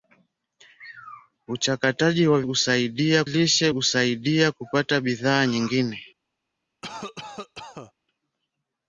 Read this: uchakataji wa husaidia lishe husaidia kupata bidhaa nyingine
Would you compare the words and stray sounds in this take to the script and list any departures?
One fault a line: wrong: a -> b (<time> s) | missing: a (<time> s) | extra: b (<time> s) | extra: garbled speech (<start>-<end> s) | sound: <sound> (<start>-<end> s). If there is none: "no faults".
sound: cough (6.8-7.9 s)